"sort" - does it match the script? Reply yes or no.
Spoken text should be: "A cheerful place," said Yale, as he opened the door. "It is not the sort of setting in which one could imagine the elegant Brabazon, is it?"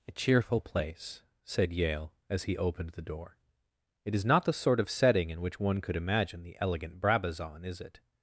yes